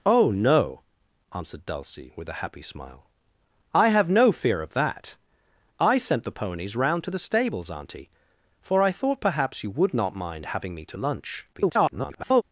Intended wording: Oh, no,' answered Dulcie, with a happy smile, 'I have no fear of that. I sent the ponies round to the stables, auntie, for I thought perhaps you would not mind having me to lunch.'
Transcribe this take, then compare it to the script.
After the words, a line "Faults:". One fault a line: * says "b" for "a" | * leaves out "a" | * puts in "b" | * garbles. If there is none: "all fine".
Oh, no,' answered Dulcie, with a happy smile, 'I have no fear of that. I sent the ponies round to the stables, auntie, for I thought perhaps you would not mind having me to lunch.' [garbled]
Faults:
* garbles